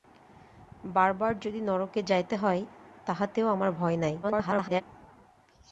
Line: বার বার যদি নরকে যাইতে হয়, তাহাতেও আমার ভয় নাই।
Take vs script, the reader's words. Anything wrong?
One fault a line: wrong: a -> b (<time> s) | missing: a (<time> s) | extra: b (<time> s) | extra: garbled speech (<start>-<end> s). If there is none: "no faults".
extra: garbled speech (4.2-4.8 s)